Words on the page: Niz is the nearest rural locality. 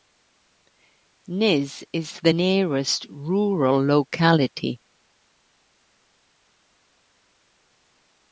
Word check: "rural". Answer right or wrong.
right